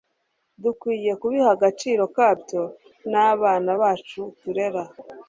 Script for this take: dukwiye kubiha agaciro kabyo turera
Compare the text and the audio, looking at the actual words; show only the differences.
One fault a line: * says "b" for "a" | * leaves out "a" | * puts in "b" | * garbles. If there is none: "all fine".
* puts in "n'abana bacu"